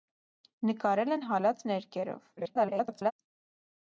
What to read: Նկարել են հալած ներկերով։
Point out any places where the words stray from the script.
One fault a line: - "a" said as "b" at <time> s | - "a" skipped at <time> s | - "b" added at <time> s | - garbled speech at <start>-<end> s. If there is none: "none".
- garbled speech at 2.4-3.1 s